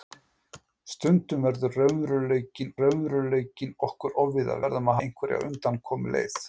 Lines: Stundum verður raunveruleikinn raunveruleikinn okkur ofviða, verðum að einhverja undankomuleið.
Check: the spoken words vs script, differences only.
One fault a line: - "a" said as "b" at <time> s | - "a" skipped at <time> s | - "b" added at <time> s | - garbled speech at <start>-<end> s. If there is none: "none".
none